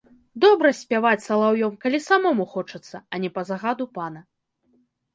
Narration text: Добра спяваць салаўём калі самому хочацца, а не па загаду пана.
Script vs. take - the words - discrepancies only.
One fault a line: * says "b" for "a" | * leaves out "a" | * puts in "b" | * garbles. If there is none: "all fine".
all fine